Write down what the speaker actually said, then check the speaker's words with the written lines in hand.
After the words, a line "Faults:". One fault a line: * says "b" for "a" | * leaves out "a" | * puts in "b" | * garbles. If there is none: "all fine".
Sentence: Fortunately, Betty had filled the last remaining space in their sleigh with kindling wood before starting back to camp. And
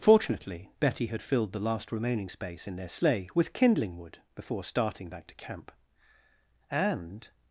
Fortunately, Betty had filled the last remaining space in their sleigh with kindling wood before starting back to camp. And
Faults:
all fine